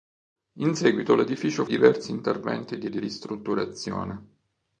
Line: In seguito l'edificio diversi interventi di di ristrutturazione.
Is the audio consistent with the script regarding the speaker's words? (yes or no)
yes